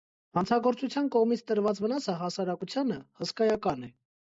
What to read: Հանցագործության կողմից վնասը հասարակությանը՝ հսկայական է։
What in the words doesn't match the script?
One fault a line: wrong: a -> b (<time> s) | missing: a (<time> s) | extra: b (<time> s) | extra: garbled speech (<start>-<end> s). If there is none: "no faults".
extra: տրված (1.5 s)